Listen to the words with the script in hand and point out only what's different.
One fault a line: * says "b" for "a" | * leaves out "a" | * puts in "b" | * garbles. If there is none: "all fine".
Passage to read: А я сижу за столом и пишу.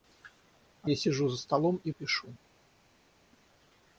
all fine